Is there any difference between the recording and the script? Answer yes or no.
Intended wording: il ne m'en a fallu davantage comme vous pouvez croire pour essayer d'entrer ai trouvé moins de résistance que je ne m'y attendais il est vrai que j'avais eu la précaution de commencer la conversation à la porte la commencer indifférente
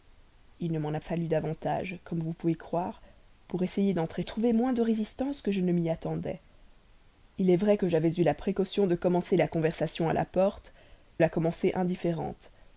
no